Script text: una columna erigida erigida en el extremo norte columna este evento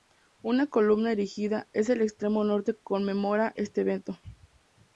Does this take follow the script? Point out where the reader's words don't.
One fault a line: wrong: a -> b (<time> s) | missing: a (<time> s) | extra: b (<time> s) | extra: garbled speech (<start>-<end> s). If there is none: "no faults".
missing: erigida (1.7 s)
wrong: columna -> conmemora (2.7 s)